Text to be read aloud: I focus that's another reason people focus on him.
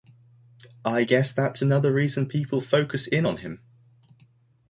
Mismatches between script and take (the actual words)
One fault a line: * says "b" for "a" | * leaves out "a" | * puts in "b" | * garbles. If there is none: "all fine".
* says "guess" for "focus"
* puts in "in"